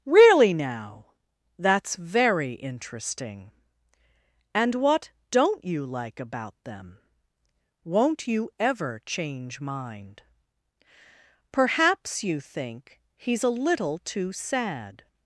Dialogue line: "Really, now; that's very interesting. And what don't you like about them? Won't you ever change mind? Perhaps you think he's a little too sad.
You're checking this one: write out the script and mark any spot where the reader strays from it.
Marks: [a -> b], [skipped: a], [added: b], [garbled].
"Really, now; that's very interesting. And what don't you like about them? Won't you ever change mind? Perhaps you think he's a little too sad.